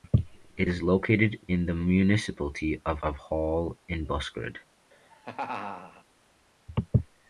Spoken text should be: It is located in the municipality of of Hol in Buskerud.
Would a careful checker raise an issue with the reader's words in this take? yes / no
no